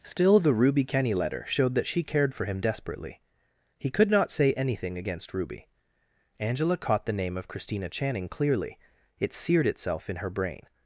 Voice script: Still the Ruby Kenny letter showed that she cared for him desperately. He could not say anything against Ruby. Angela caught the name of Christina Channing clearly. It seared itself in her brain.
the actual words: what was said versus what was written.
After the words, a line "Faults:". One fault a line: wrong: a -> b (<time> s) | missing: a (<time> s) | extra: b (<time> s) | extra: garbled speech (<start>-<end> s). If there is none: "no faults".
Still the Ruby Kenny letter showed that she cared for him desperately. He could not say anything against Ruby. Angela caught the name of Christina Channing clearly. It seared itself in her brain.
Faults:
no faults